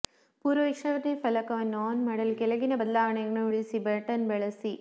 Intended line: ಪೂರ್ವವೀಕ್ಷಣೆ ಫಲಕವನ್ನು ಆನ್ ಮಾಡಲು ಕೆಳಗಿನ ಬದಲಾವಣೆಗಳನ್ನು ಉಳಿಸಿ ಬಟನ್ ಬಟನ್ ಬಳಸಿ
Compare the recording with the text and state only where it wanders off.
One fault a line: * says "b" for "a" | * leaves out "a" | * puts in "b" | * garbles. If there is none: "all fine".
* leaves out "ಬಟನ್"